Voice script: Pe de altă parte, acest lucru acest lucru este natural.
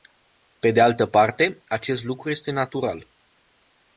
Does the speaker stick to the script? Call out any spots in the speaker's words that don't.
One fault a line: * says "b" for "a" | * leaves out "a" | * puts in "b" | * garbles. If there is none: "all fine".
* leaves out "acest lucru"